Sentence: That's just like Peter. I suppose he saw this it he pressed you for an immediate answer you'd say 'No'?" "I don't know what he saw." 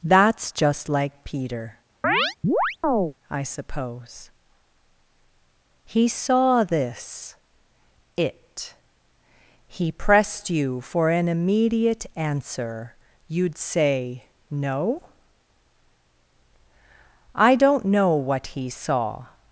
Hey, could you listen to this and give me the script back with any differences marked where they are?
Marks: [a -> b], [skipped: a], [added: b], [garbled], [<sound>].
That's just like Peter. [chirp] I suppose he saw this it he pressed you for an immediate answer you'd say 'No'?" "I don't know what he saw."